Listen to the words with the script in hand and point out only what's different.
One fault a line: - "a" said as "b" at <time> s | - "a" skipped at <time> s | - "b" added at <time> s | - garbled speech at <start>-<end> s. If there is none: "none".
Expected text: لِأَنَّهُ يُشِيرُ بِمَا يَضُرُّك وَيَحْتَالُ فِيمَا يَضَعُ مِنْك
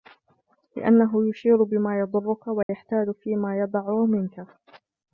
none